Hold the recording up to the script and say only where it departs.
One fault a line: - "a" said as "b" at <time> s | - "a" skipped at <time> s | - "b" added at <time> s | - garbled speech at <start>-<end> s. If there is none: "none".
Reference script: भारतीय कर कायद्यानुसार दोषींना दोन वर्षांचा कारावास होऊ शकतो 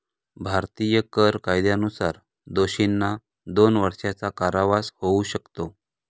none